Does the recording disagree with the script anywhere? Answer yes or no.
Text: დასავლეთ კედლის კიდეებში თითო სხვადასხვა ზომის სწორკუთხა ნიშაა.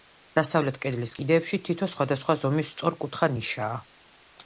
no